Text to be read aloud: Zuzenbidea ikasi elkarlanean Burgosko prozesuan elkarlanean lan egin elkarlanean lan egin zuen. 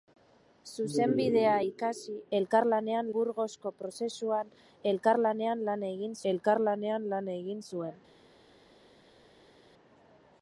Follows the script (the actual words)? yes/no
yes